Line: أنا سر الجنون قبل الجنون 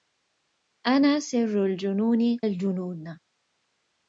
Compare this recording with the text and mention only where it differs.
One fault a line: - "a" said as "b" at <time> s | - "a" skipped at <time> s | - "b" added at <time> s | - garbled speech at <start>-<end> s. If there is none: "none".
- "قبل" skipped at 2.4 s